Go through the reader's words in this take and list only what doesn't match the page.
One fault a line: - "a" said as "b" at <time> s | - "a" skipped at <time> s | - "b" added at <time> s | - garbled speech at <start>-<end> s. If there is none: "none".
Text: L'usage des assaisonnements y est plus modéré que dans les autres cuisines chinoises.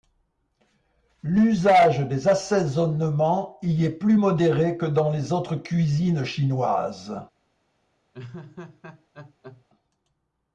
none